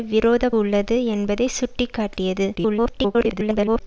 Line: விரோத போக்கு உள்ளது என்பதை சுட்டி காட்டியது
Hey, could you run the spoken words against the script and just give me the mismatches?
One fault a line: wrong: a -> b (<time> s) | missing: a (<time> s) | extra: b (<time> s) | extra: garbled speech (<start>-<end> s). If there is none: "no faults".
missing: போக்கு (0.4 s)
extra: garbled speech (2.5-3.8 s)